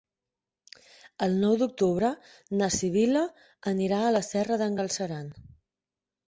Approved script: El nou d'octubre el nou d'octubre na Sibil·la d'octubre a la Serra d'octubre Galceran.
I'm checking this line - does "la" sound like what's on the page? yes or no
yes